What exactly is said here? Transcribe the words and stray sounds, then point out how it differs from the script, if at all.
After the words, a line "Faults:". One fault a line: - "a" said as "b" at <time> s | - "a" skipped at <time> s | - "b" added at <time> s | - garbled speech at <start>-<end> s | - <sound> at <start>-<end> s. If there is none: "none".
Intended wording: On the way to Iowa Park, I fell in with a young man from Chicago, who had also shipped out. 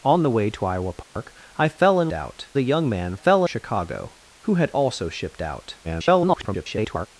On the way to Iowa Park, I fell in out a young man fell Chicago, who had also shipped out. [garbled]
Faults:
- dropout at 1.0-1.2 s
- "with" said as "out" at 2.1 s
- "from" said as "fell" at 3.1 s
- garbled speech at 5.8-7.1 s